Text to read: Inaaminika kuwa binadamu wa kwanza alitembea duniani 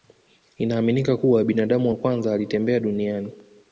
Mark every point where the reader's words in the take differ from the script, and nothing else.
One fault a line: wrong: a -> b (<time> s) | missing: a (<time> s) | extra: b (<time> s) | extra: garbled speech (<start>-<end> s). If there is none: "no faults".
no faults